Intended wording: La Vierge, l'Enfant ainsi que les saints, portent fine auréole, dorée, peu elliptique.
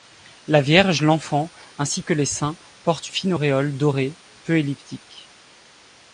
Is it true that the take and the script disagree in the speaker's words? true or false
false